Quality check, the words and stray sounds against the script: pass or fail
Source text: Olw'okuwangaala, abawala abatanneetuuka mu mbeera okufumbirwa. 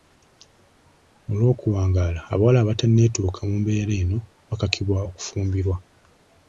fail